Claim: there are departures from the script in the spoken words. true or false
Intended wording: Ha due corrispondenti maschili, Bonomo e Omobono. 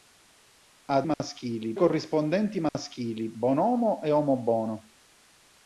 true